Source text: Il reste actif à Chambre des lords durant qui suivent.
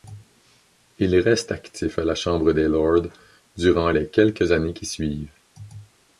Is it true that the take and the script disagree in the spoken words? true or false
true